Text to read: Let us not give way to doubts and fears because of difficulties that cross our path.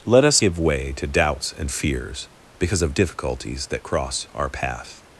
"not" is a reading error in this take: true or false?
true